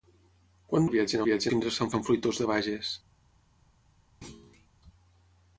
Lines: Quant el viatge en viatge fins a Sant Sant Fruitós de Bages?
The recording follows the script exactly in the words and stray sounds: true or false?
false